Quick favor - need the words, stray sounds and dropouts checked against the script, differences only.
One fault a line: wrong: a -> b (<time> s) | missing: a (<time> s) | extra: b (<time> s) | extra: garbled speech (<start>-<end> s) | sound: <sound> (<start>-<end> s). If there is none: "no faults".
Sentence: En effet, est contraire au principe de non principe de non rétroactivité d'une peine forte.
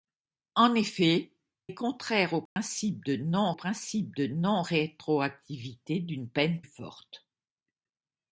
sound: dropout (2.5-2.6 s)